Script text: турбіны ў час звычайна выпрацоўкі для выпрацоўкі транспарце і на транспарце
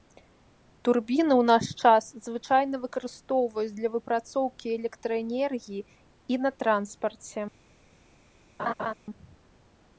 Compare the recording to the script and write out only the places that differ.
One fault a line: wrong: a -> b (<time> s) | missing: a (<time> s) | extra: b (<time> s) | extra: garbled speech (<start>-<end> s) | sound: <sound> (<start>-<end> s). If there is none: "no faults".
extra: наш (1.5 s)
wrong: выпрацоўкі -> выкарыстоўваюць (2.9 s)
wrong: транспарце -> электраэнергіі (4.8 s)
sound: laugh (8.6-8.9 s)